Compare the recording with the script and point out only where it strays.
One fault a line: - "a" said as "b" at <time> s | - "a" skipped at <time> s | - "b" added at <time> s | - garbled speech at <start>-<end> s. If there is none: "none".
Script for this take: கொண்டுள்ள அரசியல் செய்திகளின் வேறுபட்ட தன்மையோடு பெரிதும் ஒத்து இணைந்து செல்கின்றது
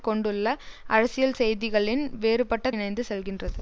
- "தன்மையோடு பெரிதும் ஒத்து" skipped at 2.7 s